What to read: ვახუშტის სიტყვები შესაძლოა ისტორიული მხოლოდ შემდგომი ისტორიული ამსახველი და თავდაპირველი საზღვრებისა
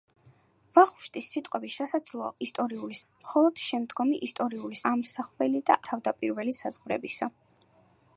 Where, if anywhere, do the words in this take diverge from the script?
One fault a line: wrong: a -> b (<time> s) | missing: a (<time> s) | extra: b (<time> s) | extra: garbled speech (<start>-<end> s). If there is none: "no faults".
no faults